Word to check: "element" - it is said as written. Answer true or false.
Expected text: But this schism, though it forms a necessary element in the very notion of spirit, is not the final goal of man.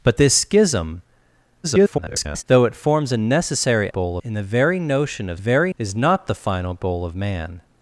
false